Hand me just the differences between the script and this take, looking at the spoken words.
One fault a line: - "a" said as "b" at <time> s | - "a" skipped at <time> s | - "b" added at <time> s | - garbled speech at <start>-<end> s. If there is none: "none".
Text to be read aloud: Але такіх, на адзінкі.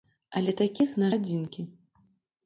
none